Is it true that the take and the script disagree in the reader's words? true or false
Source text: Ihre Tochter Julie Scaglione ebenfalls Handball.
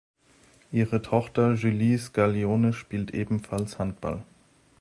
true